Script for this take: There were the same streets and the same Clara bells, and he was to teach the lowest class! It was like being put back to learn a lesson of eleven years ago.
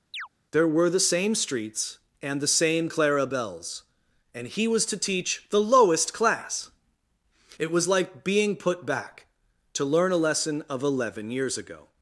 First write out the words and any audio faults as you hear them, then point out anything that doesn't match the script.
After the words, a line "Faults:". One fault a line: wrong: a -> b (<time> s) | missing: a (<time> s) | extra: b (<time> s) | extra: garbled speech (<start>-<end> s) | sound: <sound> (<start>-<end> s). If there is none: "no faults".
There were the same streets and the same Clara bells, and he was to teach the lowest class! It was like being put back to learn a lesson of eleven years ago.
Faults:
sound: chirp (0.1-0.3 s)